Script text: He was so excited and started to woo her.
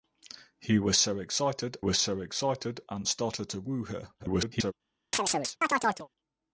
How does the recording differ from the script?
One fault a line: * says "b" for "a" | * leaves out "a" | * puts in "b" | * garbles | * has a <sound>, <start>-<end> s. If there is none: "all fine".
* puts in "was so excited"
* garbles
* has a chirp, 5.1-6.1 s